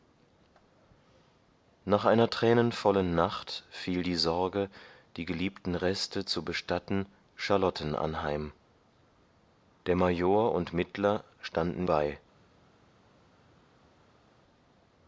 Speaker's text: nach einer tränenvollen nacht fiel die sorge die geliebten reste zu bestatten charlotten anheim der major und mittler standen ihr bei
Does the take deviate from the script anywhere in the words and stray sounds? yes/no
yes